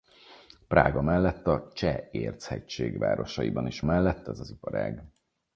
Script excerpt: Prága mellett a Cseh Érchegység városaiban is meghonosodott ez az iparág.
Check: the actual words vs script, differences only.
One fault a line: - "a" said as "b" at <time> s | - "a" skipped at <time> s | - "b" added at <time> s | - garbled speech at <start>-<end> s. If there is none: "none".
- "meghonosodott" said as "mellett" at 3.8 s